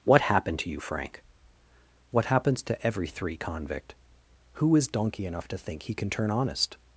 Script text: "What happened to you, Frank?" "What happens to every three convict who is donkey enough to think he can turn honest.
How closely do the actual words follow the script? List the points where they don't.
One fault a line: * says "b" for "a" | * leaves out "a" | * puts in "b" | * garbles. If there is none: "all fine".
all fine